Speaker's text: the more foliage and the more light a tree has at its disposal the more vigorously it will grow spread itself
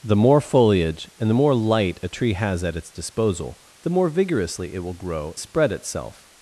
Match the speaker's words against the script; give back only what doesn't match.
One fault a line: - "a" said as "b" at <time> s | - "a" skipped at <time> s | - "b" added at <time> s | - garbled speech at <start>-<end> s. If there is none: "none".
none